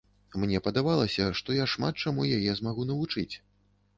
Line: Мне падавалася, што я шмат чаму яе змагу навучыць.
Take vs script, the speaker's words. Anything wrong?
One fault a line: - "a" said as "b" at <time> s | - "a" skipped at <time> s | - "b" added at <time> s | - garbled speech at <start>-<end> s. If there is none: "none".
none